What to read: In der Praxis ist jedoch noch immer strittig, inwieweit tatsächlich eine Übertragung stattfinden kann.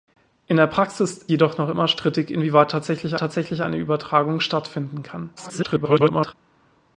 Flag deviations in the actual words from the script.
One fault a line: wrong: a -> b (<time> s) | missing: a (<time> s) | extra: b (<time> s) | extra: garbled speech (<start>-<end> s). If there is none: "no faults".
missing: ist (1.2 s)
extra: tatsächlich (3.2 s)
extra: garbled speech (5.4-6.3 s)